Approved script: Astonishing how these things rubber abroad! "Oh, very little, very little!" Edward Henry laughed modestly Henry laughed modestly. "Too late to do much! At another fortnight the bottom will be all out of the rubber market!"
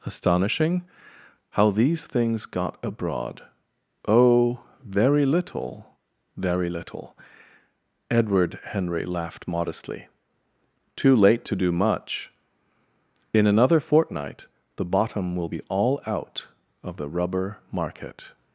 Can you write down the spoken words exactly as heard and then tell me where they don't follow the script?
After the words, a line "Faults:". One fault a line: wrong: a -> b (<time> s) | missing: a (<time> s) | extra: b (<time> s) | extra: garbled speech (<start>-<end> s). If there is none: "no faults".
Astonishing how these things got abroad! "Oh, very little, very little!" Edward Henry laughed modestly. "Too late to do much! In another fortnight the bottom will be all out of the rubber market!"
Faults:
wrong: rubber -> got (2.5 s)
missing: Henry laughed modestly (10.1 s)
wrong: At -> In (13.3 s)